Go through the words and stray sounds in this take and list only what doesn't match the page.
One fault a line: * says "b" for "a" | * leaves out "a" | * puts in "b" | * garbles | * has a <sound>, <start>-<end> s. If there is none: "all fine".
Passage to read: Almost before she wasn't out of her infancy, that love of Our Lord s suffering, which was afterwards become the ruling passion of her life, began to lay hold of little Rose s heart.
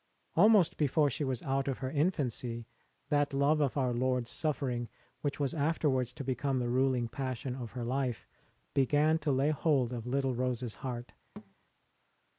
* says "was" for "wasn't"
* puts in "to"
* has a thud, 11.4-11.5 s